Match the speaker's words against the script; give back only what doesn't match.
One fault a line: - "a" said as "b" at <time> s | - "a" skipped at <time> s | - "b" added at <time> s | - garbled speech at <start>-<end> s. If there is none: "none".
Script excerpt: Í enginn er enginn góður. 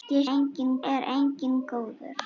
none